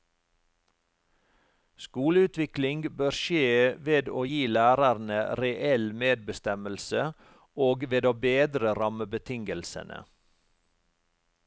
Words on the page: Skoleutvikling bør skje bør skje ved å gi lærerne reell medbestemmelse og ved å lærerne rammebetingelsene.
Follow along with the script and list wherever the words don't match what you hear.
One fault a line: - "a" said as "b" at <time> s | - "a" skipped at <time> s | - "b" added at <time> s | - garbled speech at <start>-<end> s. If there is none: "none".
- "bør skje" skipped at 3.5 s
- "lærerne" said as "bedre" at 8.3 s